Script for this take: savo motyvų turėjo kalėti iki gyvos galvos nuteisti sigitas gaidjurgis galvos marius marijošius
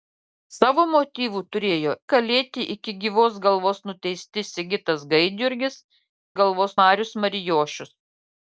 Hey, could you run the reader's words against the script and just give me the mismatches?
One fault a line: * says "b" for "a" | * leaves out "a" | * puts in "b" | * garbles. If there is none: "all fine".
all fine